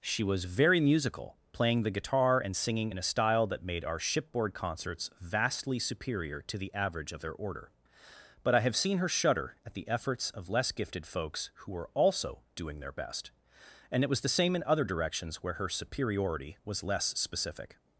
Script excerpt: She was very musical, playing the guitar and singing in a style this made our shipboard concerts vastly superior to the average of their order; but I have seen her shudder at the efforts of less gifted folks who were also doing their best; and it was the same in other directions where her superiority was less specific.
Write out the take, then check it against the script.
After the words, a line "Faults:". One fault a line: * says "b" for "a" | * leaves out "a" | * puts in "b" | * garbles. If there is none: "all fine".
She was very musical, playing the guitar and singing in a style that made our shipboard concerts vastly superior to the average of their order; but I have seen her shudder at the efforts of less gifted folks who were also doing their best; and it was the same in other directions where her superiority was less specific.
Faults:
* says "that" for "this"